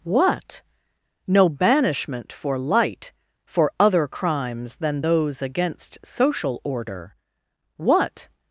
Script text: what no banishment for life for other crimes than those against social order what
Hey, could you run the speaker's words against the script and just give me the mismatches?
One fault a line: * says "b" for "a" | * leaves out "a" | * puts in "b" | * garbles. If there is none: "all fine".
* says "light" for "life"